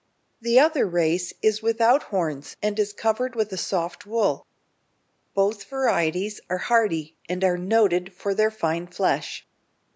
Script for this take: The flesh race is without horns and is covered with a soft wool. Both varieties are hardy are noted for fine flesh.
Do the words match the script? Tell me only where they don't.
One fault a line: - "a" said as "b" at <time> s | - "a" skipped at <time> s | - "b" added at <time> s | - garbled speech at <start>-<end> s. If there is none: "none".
- "flesh" said as "other" at 0.6 s
- "and" added at 7.3 s
- "their" added at 8.4 s